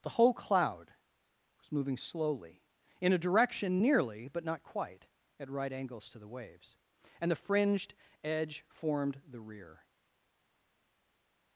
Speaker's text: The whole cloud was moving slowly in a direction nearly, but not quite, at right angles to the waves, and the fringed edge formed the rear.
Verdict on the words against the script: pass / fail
pass